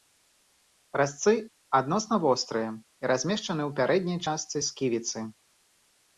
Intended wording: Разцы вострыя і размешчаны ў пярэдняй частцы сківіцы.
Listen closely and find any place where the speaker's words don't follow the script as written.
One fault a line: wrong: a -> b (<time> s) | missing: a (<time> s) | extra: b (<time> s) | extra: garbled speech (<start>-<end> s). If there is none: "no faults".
extra: адносна (1.8 s)